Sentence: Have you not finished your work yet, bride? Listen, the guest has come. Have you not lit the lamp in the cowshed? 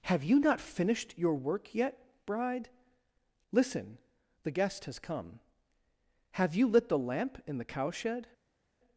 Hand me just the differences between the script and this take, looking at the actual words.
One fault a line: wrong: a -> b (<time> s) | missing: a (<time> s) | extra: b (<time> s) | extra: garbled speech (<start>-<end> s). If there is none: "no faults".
missing: not (6.7 s)